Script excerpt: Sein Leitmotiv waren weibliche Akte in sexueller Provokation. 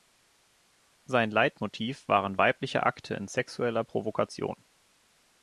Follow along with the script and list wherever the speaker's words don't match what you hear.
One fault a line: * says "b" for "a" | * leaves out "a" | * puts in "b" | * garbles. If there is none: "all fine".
all fine